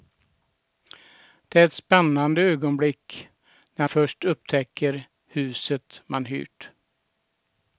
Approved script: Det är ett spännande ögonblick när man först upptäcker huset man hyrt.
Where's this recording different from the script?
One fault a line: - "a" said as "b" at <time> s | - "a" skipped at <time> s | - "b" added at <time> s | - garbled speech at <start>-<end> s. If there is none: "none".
- "man" skipped at 3.9 s